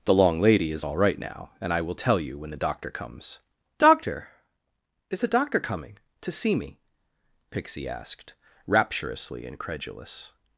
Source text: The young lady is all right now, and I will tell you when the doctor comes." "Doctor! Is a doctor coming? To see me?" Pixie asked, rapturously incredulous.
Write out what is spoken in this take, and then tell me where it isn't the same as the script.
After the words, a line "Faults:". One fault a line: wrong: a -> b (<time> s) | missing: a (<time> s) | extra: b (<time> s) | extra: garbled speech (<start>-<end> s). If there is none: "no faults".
The long lady is all right now, and I will tell you when the doctor comes." "Doctor! Is a doctor coming? To see me?" Pixie asked, rapturously incredulous.
Faults:
wrong: young -> long (0.1 s)